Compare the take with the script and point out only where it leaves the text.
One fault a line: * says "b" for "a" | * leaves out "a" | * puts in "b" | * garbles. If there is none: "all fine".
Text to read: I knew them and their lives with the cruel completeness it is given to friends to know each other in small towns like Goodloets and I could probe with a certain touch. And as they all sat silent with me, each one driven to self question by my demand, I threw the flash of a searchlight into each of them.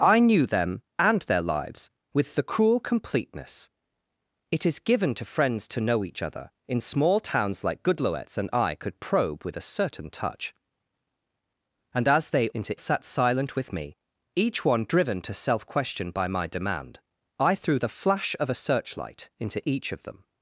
* says "into" for "all"